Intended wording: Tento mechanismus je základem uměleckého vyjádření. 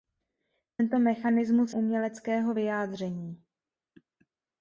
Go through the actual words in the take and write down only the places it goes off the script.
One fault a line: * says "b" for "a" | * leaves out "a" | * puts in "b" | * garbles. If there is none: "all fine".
* leaves out "je základem"